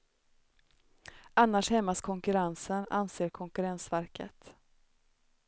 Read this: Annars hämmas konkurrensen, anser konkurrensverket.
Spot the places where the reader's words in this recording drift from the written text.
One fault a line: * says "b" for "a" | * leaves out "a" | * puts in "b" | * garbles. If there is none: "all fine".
all fine